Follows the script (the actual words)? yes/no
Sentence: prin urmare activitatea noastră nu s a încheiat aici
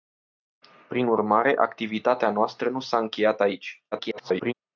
no